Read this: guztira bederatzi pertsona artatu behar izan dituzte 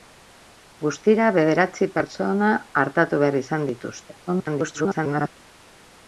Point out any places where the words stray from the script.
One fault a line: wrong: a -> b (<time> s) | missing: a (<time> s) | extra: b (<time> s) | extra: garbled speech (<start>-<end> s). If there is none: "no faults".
extra: garbled speech (4.3-5.3 s)